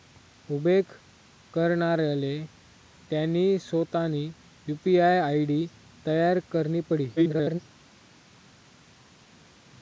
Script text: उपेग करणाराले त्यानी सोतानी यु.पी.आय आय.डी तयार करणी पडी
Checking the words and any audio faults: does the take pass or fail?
fail